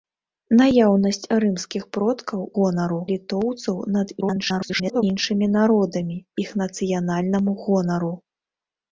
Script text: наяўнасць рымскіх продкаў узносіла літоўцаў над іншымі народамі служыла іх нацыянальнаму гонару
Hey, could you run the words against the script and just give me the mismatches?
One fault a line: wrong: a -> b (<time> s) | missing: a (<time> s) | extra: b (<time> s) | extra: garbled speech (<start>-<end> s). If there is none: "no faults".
wrong: узносіла -> гонару (2.6 s)
extra: garbled speech (4.2-5.0 s)
missing: служыла (6.2 s)